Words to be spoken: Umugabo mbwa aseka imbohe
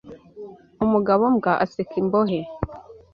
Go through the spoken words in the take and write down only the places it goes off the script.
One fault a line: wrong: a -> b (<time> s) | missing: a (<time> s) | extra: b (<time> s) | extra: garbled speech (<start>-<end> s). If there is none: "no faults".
no faults